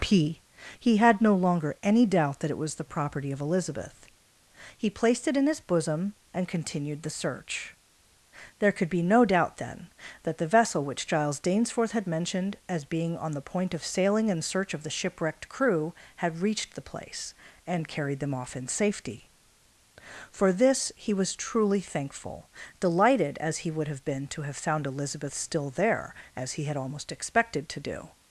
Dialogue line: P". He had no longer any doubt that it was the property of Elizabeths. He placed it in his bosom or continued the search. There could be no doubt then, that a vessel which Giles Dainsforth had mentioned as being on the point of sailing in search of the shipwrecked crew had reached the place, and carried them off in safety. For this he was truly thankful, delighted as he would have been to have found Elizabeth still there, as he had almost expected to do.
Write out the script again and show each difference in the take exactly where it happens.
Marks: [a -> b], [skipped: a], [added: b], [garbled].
P". He had no longer any doubt that it was the property of [Elizabeths. -> Elizabeth] He placed it in his bosom [or -> and] continued the search. There could be no doubt then, that [a -> the] vessel which Giles Dainsforth had mentioned as being on the point of sailing in search of the shipwrecked crew had reached the place, and carried them off in safety. For this he was truly thankful, delighted as he would have been to have found Elizabeth still there, as he had almost expected to do.